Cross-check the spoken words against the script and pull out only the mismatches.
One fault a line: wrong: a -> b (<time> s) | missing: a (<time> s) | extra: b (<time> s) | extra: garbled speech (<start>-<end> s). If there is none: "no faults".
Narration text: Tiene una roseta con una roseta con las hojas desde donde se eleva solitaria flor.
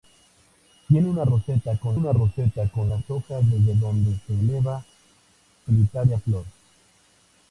no faults